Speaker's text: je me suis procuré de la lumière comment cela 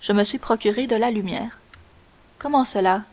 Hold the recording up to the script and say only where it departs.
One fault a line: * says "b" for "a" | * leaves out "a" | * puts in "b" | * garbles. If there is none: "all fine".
all fine